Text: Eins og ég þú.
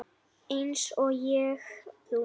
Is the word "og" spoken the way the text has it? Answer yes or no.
yes